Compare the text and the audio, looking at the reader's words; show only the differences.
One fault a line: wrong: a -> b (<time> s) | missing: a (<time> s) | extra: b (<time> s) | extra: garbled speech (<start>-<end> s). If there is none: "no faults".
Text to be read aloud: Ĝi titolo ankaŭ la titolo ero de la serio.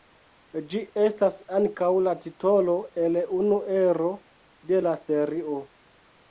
wrong: titolo -> estas (1.0 s)
extra: el unu (3.0 s)